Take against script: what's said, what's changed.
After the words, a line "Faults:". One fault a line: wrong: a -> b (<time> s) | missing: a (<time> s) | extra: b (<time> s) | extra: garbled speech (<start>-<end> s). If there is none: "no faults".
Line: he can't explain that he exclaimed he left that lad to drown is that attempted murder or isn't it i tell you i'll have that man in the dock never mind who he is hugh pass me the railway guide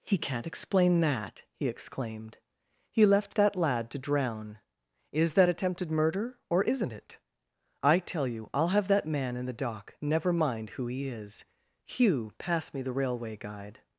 he can't explain that he exclaimed he left that lad to drown is that attempted murder or isn't it i tell you i'll have that man in the dock never mind who he is hugh pass me the railway guide
Faults:
no faults